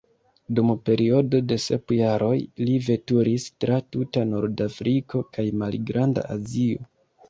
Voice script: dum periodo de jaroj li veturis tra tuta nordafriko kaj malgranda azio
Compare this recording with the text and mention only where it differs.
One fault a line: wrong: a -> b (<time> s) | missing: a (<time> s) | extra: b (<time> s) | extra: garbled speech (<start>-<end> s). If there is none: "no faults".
extra: sep (1.6 s)